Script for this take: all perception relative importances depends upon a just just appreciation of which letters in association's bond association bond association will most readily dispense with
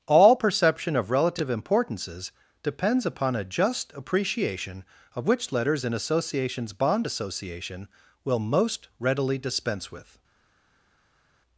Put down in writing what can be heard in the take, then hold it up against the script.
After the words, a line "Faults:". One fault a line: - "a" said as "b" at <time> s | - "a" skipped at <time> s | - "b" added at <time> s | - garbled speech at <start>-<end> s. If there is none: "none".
all perception of relative importances depends upon a just appreciation of which letters in association's bond association will most readily dispense with
Faults:
- "of" added at 0.9 s
- "just" skipped at 3.9 s
- "bond association" skipped at 7.9 s